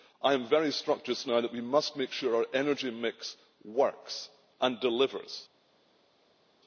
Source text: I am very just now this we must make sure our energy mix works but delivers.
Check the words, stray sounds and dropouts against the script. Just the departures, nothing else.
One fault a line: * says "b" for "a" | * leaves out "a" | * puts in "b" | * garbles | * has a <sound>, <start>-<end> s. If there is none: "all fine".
* puts in "struck"
* says "that" for "this"
* says "and" for "but"